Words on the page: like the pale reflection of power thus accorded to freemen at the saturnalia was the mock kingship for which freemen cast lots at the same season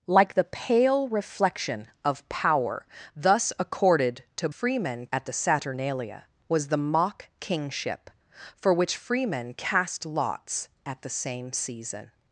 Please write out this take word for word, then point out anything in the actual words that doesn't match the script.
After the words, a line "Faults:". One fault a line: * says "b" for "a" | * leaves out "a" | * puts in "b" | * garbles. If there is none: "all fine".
like the pale reflection of power thus accorded to freemen at the saturnalia was the mock kingship for which freemen cast lots at the same season
Faults:
all fine